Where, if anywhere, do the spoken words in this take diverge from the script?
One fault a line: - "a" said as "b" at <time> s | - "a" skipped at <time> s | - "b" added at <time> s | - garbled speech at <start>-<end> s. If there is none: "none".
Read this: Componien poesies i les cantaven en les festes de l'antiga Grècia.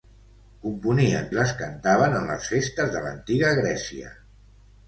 - "poesies" skipped at 1.3 s